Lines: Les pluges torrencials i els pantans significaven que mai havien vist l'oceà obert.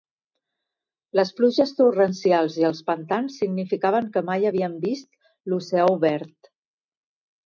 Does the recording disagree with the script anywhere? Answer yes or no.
no